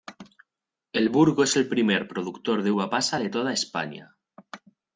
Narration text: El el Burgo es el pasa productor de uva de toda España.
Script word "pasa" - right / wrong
wrong